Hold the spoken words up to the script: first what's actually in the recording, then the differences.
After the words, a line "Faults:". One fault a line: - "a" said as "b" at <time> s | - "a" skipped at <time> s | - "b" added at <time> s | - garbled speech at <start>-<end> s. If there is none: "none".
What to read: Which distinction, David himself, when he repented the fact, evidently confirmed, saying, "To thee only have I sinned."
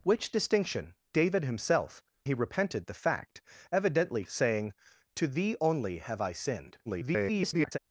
Which distinction, David himself, he repented the fact, evidently saying, "To thee only have I sinned." [garbled]
Faults:
- "when" skipped at 2.0 s
- "confirmed" skipped at 4.2 s
- garbled speech at 6.9-7.8 s